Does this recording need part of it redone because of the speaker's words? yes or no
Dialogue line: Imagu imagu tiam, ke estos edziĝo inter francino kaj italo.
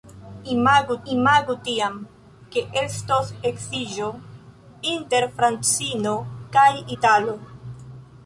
no